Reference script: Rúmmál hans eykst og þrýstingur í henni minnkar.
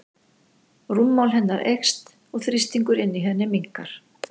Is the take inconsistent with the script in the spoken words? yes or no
yes